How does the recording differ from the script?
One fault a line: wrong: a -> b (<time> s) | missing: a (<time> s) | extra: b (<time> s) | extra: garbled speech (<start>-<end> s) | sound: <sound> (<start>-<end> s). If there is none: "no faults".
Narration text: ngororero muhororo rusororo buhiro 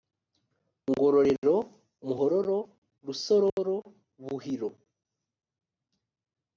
sound: dropout (3.5-3.6 s)